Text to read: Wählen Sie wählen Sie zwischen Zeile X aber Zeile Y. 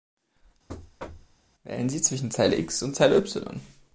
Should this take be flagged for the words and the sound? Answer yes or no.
yes